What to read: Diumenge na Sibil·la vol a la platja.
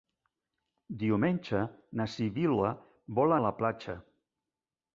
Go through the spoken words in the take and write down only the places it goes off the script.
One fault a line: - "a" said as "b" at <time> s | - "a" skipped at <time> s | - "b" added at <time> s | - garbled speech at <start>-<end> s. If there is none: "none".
none